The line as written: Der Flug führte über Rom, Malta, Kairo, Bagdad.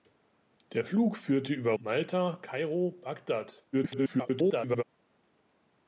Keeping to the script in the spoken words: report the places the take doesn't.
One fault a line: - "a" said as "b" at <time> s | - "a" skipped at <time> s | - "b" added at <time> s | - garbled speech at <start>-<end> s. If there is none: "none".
- "Rom" skipped at 1.7 s
- garbled speech at 3.7-4.8 s